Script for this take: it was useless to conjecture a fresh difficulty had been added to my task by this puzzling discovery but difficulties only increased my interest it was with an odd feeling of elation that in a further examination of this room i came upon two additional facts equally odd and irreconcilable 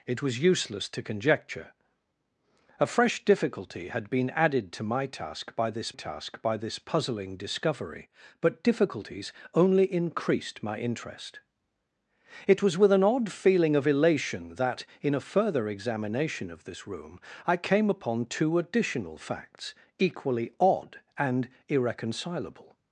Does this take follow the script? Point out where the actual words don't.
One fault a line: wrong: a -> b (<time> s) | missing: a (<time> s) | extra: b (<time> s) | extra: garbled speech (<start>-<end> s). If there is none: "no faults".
extra: task by this (5.9 s)